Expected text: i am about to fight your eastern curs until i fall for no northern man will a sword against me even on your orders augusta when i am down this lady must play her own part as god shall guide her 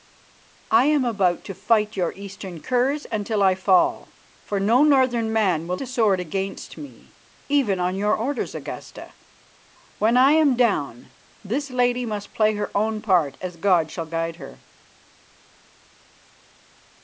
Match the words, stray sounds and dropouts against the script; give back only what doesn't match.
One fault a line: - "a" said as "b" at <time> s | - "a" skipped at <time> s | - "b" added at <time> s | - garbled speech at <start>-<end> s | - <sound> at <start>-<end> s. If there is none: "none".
none